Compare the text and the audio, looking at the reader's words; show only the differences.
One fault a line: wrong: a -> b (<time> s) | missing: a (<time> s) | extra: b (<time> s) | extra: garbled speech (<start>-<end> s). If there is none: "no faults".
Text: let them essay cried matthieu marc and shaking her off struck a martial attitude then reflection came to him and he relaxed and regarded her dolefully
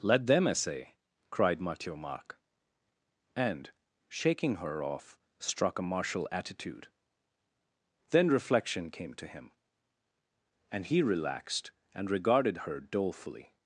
no faults